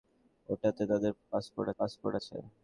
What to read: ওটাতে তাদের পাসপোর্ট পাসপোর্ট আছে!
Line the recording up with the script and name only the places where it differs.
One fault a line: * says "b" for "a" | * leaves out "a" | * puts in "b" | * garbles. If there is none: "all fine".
all fine